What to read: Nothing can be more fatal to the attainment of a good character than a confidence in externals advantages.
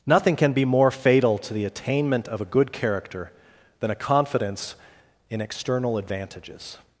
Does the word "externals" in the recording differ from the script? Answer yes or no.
yes